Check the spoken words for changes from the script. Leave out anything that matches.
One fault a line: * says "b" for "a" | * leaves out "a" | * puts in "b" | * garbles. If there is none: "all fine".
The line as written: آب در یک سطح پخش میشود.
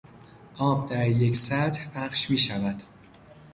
all fine